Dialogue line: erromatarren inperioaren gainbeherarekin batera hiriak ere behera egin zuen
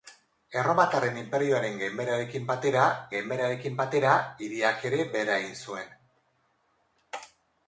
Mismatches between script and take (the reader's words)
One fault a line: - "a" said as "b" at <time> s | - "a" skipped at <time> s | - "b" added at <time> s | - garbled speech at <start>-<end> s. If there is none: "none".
- "gainbeherarekin batera" added at 3.2 s